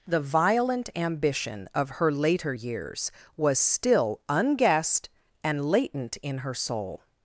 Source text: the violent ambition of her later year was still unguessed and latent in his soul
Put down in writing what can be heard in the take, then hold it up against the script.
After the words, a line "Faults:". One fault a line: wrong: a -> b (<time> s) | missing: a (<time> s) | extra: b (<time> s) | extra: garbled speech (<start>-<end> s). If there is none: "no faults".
the violent ambition of her later years was still unguessed and latent in her soul
Faults:
wrong: year -> years (2.5 s)
wrong: his -> her (6.4 s)